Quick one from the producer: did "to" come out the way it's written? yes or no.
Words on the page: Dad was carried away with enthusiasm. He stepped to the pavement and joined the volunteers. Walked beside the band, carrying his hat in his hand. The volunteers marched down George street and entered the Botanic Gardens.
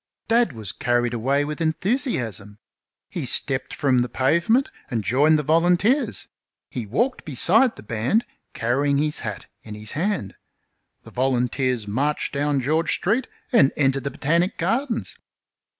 no